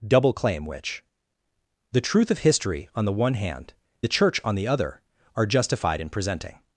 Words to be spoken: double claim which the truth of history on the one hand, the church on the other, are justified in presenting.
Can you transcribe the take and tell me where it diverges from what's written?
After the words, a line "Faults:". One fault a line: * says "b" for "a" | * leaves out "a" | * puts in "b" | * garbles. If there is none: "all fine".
double claim which the truth of history on the one hand, the church on the other, are justified in presenting.
Faults:
all fine